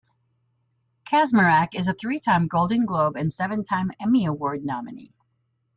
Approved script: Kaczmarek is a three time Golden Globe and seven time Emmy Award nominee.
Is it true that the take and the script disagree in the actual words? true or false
false